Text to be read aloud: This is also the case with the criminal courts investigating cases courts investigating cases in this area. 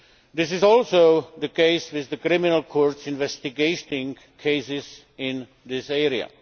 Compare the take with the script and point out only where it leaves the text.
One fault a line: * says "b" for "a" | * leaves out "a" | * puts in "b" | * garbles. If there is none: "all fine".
* leaves out "courts investigating cases"